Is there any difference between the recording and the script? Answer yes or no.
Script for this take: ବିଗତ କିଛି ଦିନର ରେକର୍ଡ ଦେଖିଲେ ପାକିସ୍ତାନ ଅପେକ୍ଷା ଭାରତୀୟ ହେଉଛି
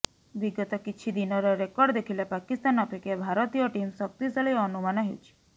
yes